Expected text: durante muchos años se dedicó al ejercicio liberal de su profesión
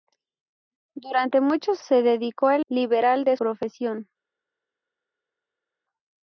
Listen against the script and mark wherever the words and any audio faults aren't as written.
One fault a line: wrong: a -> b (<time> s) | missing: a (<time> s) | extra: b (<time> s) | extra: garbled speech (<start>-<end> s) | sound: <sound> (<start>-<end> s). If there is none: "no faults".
missing: años (1.9 s)
missing: ejercicio (2.6 s)
missing: su (3.4 s)